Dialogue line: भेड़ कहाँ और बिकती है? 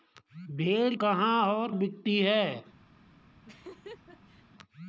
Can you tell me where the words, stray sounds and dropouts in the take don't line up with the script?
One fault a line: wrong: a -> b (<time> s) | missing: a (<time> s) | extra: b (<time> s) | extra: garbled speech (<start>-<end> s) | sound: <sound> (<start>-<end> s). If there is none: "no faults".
sound: laugh (3.5-4.5 s)